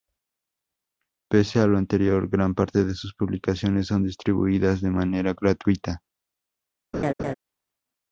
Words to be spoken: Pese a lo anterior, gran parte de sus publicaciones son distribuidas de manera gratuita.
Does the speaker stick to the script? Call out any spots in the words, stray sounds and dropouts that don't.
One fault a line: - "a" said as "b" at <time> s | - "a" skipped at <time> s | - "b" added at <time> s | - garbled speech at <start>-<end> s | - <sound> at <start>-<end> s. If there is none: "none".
- laugh at 6.9-7.3 s